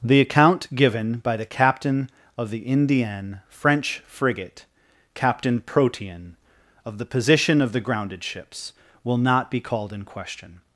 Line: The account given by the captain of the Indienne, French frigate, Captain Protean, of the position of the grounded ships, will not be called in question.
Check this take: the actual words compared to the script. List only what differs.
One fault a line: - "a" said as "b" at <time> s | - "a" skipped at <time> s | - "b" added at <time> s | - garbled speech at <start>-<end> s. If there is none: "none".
none